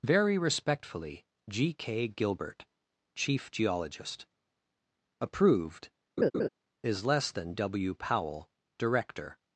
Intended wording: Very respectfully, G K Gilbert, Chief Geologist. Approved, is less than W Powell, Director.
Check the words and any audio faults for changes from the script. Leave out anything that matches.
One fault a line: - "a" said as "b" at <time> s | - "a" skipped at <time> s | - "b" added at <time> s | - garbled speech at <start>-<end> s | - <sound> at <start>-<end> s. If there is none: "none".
- laugh at 6.2-6.5 s